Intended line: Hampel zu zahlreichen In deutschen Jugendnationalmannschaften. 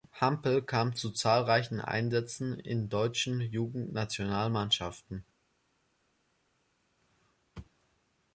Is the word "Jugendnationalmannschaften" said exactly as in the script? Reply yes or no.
yes